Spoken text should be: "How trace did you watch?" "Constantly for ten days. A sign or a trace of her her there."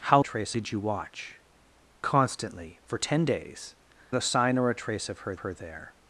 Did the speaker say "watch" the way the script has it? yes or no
yes